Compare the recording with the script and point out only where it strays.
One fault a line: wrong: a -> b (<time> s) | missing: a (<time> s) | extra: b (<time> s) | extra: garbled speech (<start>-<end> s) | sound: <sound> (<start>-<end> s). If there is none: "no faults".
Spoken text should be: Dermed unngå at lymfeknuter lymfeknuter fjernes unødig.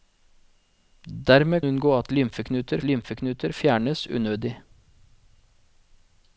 no faults